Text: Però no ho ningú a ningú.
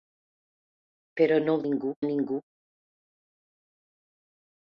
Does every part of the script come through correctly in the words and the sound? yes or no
yes